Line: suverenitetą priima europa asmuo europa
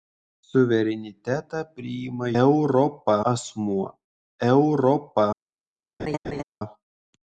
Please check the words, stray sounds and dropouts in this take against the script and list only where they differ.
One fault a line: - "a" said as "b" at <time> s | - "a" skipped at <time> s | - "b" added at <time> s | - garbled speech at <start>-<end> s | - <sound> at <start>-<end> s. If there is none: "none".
- laugh at 6.0-6.4 s